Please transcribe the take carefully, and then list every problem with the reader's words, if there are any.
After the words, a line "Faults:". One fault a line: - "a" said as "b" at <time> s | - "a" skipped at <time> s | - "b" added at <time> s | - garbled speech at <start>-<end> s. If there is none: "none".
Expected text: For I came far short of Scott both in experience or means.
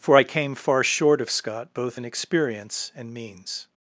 For I came far short of Scott both in experience and means.
Faults:
- "or" said as "and" at 2.9 s